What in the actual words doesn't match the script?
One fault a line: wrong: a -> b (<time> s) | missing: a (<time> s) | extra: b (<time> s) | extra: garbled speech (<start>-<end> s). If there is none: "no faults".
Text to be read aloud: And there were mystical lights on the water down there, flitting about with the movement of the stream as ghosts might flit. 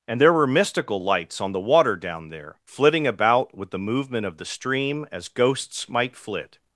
no faults